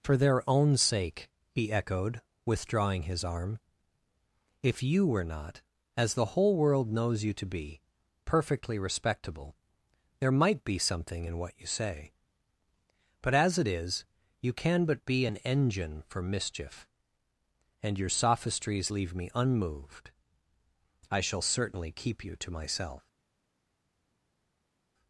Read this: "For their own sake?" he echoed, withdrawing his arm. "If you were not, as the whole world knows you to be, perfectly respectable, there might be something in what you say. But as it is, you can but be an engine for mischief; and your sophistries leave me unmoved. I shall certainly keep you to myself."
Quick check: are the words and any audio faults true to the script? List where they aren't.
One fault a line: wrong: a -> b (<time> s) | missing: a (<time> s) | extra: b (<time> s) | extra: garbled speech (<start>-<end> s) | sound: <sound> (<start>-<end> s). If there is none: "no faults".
no faults